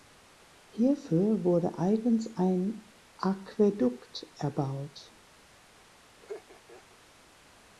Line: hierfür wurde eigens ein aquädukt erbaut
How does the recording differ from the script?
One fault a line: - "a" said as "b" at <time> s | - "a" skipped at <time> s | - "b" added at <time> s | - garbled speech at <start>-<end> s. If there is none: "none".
none